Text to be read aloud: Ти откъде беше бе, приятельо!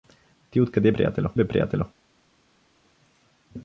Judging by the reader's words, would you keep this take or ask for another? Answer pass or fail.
fail